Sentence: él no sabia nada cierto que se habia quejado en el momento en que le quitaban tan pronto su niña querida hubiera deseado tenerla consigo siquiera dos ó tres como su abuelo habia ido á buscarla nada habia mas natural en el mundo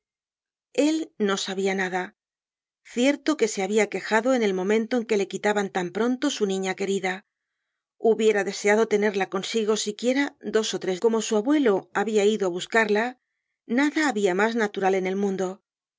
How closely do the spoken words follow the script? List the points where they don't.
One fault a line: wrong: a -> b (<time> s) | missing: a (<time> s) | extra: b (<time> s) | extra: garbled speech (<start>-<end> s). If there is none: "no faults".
no faults